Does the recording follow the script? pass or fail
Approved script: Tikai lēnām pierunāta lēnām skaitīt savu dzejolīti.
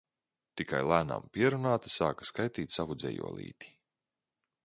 fail